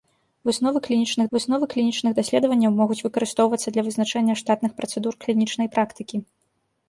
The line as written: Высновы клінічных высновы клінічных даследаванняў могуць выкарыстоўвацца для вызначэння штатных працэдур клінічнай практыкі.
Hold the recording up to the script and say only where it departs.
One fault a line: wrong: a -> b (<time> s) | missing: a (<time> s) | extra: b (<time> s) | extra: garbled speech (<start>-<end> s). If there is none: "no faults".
no faults